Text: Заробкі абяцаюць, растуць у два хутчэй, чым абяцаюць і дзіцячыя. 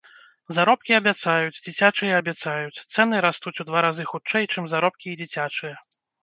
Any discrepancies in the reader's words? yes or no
yes